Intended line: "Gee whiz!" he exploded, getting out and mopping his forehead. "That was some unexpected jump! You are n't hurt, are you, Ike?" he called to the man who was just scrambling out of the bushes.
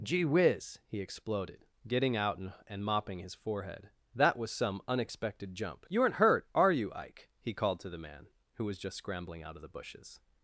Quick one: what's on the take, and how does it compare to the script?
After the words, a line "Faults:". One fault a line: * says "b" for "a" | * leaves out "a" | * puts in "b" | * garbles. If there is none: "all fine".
"Gee whiz!" he exploded, getting out and and mopping his forehead. "That was some unexpected jump! You are n't hurt, are you, Ike?" he called to the man who was just scrambling out of the bushes.
Faults:
* puts in "and"